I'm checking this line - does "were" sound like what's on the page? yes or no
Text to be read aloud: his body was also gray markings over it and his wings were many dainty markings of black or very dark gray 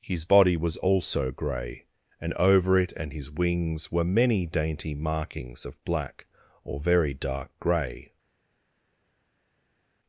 yes